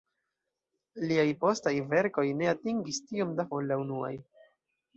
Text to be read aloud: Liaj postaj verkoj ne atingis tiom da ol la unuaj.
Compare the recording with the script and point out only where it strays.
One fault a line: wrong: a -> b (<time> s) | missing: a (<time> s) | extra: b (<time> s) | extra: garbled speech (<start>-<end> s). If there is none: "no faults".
no faults